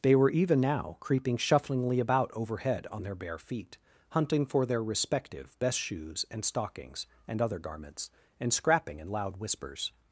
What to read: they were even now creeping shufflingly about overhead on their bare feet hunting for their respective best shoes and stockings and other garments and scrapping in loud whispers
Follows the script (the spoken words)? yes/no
yes